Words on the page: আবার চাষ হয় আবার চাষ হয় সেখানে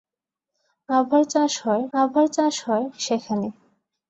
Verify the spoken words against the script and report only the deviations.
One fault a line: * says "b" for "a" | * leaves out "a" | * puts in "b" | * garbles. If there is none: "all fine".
all fine